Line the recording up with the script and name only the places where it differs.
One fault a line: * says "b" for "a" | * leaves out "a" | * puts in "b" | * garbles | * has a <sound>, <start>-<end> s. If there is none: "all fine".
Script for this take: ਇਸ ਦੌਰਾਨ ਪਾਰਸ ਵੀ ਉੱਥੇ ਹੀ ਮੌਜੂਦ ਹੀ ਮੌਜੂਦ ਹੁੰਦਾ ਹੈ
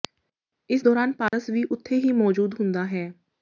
* has a dropout, 1.3-1.3 s
* leaves out "ਹੀ ਮੌਜੂਦ"